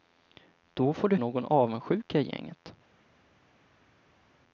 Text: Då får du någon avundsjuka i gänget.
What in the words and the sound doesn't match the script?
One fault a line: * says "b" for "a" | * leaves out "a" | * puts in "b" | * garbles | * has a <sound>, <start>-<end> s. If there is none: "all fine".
all fine